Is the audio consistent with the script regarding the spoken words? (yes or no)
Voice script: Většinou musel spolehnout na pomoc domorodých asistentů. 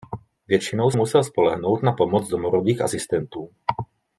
yes